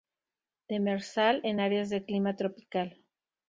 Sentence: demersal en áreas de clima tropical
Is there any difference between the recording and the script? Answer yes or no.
no